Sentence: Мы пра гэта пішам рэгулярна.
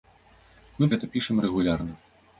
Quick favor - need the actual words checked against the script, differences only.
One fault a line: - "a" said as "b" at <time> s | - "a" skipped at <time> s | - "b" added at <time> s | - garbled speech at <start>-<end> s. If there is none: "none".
- "пра" skipped at 0.9 s